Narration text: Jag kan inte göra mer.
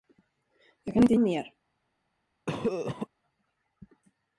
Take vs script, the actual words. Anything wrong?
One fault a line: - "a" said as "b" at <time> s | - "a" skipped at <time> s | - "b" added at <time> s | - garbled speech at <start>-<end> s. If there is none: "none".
- "göra" skipped at 1.1 s